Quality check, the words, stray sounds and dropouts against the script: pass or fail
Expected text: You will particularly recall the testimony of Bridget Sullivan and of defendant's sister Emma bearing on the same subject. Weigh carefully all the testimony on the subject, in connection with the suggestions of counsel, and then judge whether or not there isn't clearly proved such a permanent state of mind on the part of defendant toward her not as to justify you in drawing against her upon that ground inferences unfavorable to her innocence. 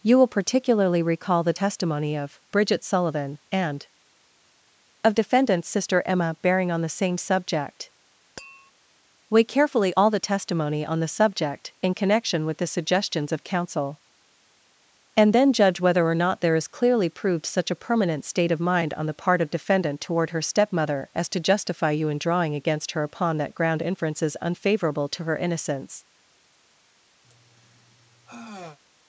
fail